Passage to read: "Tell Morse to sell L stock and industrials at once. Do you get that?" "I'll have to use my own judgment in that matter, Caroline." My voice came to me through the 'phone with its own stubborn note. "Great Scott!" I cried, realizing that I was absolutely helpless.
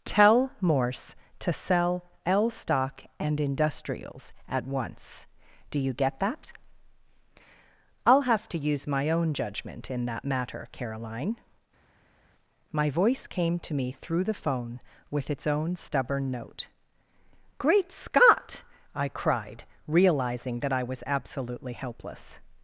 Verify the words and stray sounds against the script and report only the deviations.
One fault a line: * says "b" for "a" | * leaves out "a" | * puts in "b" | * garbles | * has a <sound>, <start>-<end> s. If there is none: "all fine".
all fine